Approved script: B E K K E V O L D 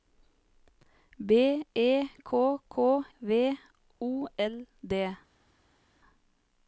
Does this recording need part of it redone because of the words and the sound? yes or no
yes